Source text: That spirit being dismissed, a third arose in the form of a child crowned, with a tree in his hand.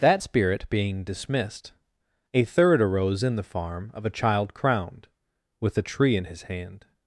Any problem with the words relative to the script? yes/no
yes